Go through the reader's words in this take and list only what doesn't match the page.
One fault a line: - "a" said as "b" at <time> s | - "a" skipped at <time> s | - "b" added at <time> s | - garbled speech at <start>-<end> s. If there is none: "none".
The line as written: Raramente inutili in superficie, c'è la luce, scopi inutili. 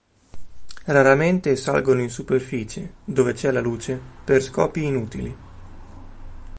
- "inutili" said as "salgono" at 1.6 s
- "dove" added at 3.0 s
- "per" added at 4.2 s